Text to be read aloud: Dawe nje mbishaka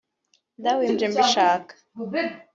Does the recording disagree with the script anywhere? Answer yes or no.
no